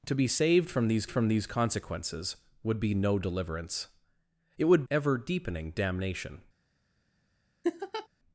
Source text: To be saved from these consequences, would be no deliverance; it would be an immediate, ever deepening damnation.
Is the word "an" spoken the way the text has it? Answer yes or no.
no